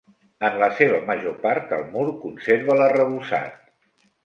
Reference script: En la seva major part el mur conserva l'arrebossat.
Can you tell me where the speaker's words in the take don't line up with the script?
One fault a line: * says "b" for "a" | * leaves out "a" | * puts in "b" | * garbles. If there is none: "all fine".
all fine